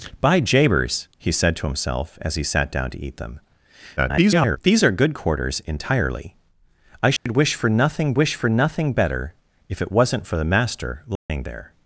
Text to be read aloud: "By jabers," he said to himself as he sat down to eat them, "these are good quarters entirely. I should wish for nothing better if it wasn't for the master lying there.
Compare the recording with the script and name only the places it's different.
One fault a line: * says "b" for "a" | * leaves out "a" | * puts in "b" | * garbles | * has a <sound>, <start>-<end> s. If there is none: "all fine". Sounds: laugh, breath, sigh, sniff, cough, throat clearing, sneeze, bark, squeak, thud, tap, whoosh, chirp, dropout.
* garbles
* has a dropout, 7.2-7.3 s
* puts in "wish for nothing"
* has a dropout, 11.2-11.3 s